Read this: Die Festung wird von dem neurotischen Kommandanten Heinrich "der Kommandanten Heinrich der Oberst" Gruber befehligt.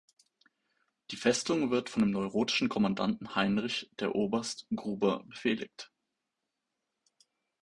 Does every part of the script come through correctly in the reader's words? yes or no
no